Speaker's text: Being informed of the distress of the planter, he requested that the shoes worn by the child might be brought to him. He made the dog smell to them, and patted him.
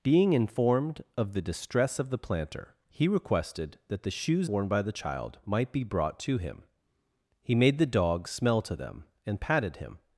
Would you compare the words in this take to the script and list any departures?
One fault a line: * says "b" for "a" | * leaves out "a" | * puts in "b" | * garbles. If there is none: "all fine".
all fine